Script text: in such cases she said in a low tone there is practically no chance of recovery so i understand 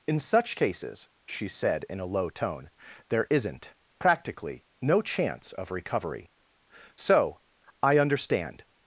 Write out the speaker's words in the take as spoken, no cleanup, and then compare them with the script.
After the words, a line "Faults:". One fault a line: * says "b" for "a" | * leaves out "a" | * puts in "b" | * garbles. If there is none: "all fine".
in such cases she said in a low tone there isn't practically no chance of recovery so i understand
Faults:
* says "isn't" for "is"